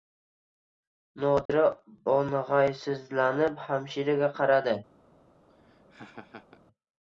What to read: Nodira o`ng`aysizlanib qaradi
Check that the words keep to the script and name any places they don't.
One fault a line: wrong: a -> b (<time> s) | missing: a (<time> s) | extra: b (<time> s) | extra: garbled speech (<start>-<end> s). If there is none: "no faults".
extra: hamshiraga (3.6 s)